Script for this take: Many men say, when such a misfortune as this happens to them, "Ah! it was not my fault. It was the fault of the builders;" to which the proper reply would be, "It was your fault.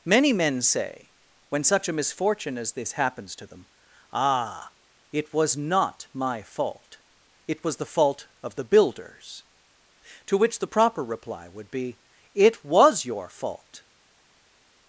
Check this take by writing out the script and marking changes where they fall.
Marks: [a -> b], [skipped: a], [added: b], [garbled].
Many men say, when such a misfortune as this happens to them, "Ah! it was not my fault. It was the fault of the builders;" to which the proper reply would be, "It was your fault.